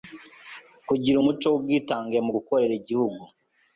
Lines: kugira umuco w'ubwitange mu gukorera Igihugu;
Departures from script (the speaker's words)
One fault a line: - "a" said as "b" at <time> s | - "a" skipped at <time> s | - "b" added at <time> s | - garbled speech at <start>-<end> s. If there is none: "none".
none